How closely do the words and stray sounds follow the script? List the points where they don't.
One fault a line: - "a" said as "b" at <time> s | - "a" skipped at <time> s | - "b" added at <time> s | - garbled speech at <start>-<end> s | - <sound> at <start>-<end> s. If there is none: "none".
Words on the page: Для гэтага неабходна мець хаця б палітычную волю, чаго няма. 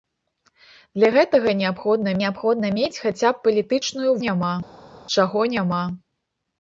- "неабходна" added at 2.2 s
- "волю" said as "няма" at 4.2 s